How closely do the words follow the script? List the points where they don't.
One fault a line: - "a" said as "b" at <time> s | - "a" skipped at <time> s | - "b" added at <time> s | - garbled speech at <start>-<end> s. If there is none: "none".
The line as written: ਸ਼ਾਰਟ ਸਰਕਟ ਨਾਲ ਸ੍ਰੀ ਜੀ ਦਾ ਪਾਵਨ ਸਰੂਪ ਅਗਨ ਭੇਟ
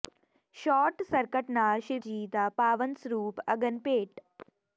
none